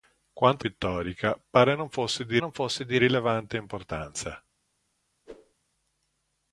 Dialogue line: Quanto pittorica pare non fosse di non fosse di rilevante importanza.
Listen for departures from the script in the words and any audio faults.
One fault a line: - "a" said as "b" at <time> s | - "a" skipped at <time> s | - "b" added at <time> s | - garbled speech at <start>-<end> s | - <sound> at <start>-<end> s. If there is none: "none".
- whoosh at 5.3-5.5 s